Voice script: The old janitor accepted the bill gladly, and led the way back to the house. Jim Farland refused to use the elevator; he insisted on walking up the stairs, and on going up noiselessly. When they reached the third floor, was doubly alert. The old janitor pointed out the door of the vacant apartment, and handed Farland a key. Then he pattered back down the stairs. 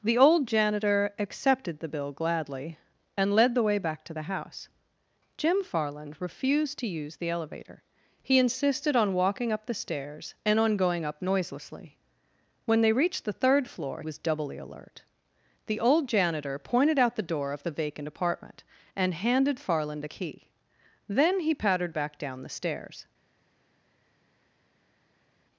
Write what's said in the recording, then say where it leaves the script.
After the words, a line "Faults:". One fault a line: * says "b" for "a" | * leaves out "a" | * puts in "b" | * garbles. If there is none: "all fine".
The old janitor accepted the bill gladly, and led the way back to the house. Jim Farland refused to use the elevator; he insisted on walking up the stairs, and on going up noiselessly. When they reached the third floor, was doubly alert. The old janitor pointed out the door of the vacant apartment, and handed Farland a key. Then he pattered back down the stairs.
Faults:
all fine